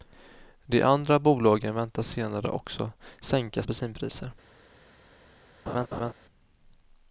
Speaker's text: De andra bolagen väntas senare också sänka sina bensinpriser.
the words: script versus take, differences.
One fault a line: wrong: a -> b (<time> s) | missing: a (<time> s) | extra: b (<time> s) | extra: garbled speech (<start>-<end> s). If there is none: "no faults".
missing: sina (3.6 s)